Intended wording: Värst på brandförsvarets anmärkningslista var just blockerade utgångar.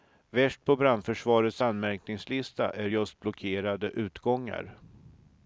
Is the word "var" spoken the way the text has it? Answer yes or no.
no